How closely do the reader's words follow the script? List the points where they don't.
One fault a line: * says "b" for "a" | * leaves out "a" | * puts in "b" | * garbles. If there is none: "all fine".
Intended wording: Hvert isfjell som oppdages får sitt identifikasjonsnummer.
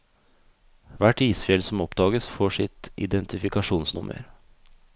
all fine